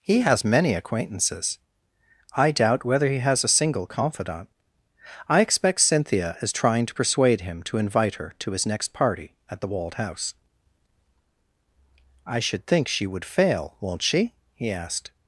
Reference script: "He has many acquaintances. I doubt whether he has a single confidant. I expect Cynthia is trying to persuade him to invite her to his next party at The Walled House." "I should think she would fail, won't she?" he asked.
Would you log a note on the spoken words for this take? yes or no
no